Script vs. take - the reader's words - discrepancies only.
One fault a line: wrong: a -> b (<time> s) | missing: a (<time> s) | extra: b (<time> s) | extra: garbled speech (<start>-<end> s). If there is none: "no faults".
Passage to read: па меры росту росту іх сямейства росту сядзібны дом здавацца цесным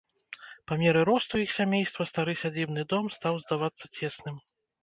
missing: росту (1.4 s)
wrong: росту -> стары (2.1 s)
extra: стаў (3.2 s)